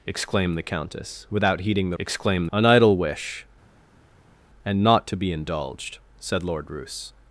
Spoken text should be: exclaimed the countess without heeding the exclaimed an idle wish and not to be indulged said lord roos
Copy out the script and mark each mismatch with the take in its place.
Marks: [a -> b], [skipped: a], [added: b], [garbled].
exclaimed the countess without heeding the exclaimed an idle wish and not to be indulged said lord roos